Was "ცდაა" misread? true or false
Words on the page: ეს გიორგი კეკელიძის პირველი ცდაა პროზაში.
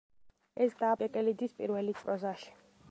true